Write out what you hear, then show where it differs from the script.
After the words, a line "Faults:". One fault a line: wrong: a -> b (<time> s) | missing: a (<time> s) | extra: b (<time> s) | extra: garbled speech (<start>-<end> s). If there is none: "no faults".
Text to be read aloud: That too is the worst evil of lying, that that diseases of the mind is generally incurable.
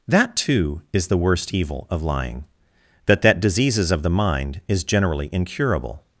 That too is the worst evil of lying, that that diseases of the mind is generally incurable.
Faults:
no faults